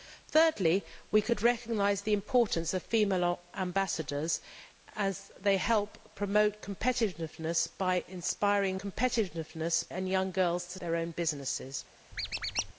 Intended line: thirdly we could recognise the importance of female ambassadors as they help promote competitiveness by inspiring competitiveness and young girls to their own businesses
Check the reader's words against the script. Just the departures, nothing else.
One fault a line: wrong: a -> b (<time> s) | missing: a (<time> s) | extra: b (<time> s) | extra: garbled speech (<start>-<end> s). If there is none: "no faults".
no faults